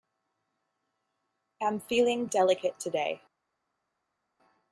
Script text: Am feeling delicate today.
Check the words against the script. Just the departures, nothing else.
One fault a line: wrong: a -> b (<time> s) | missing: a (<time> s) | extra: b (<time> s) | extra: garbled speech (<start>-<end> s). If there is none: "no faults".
no faults